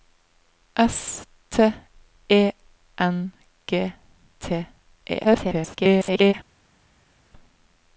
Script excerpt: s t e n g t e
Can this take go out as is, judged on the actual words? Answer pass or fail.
fail